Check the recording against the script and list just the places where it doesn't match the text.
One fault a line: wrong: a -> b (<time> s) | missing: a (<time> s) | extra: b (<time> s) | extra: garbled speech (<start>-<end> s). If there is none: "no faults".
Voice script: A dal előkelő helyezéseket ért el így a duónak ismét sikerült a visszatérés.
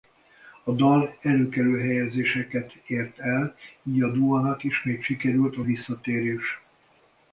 no faults